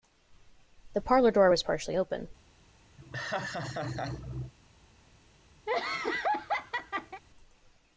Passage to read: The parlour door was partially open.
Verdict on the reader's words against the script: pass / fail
pass